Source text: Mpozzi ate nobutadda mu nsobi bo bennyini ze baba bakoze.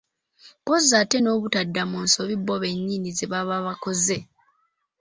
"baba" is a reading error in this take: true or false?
false